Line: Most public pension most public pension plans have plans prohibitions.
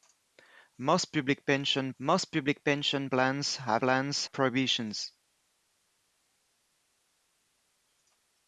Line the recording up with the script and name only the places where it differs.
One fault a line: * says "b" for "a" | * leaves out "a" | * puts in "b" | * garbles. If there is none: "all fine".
all fine